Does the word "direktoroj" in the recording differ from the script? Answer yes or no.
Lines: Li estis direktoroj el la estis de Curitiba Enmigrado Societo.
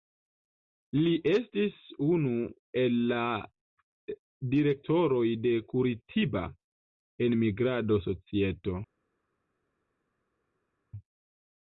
yes